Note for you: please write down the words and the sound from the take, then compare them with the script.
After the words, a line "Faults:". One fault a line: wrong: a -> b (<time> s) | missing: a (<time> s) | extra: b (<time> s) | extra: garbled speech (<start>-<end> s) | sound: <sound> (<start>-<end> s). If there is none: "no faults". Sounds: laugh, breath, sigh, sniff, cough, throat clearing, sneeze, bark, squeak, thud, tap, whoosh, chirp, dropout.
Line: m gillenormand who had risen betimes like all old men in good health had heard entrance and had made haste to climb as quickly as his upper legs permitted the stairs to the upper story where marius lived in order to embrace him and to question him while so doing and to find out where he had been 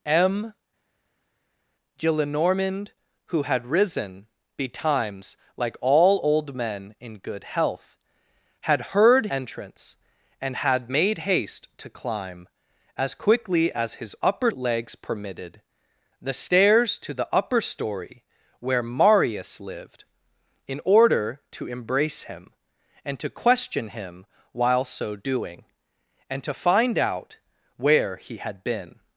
m gillenormand who had risen betimes like all old men in good health had heard entrance and had made haste to climb as quickly as his upper legs permitted the stairs to the upper story where marius lived in order to embrace him and to question him while so doing and to find out where he had been
Faults:
no faults